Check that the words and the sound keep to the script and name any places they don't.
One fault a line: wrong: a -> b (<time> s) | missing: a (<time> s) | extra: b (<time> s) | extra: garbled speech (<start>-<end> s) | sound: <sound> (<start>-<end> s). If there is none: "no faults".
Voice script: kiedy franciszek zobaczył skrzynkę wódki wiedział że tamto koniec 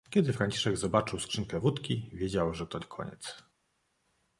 wrong: tamto -> to (2.7 s)